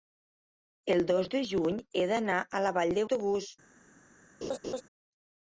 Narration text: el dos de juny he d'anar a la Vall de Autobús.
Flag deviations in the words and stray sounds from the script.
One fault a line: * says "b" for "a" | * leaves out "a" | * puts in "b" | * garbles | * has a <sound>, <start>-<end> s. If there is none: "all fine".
* has a laugh, 4.4-4.8 s